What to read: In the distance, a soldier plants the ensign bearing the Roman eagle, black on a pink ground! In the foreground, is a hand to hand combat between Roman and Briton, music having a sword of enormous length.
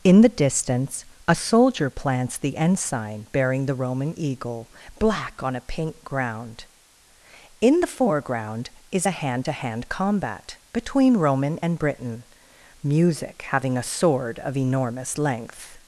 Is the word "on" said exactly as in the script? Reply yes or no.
yes